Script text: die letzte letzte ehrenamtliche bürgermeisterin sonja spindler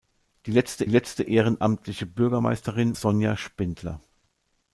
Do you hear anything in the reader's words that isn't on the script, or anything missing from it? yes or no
no